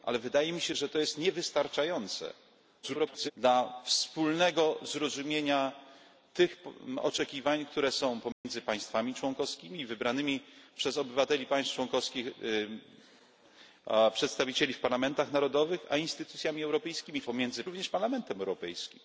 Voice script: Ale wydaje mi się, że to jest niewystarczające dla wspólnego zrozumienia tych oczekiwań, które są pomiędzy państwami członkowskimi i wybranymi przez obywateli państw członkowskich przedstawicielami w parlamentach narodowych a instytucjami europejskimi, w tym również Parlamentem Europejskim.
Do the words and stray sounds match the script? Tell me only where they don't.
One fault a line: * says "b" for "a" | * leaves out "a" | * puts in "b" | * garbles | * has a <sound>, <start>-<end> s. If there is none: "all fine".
* garbles
* has a dropout, 8.3-8.4 s
* says "pomiędzy" for "tym"